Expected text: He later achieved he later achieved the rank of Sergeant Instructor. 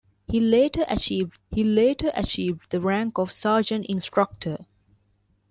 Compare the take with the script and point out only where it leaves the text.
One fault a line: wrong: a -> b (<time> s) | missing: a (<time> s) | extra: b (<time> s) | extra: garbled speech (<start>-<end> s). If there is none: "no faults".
no faults